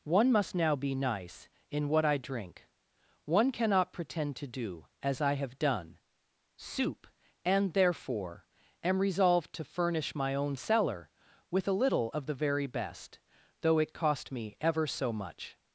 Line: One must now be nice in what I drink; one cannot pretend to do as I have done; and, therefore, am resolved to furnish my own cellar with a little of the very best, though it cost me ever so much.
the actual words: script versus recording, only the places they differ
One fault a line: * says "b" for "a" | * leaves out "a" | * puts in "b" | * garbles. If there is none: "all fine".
* puts in "soup"